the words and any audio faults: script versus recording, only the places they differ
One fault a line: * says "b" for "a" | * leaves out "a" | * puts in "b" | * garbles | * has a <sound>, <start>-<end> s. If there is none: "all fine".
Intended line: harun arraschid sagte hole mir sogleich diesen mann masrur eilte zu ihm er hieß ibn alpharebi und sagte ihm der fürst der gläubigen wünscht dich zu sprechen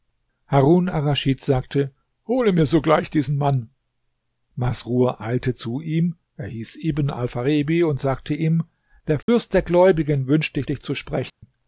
* has a dropout, 9.2-9.3 s
* puts in "dich"
* has a dropout, 11.3-11.4 s